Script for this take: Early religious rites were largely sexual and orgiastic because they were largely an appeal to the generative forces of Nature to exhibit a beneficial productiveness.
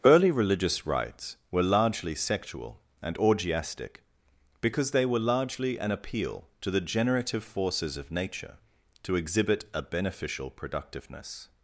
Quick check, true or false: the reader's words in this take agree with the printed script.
true